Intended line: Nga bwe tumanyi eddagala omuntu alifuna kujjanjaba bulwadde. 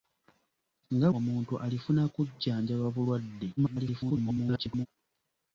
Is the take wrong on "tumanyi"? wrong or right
wrong